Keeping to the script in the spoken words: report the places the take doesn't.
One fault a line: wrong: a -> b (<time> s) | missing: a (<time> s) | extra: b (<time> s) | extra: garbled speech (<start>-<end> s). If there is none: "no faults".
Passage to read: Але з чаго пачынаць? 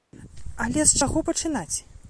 no faults